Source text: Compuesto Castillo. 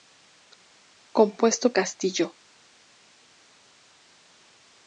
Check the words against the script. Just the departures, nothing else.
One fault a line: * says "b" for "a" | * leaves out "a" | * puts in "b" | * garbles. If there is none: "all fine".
all fine